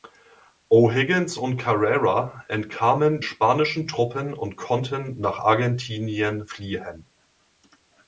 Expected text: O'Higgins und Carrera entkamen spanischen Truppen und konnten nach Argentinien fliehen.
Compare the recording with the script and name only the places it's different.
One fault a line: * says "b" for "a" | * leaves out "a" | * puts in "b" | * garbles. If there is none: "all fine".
all fine